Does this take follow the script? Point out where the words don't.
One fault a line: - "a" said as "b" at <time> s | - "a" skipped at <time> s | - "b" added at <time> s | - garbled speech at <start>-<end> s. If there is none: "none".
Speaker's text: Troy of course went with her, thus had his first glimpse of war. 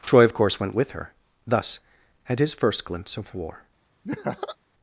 none